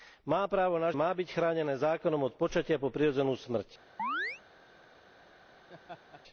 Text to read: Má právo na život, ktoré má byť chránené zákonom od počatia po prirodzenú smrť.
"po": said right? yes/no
yes